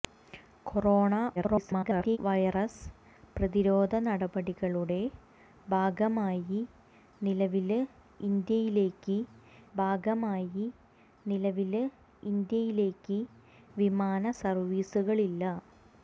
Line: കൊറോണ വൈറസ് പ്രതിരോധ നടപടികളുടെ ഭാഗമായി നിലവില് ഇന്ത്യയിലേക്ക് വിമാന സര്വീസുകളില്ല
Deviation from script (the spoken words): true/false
true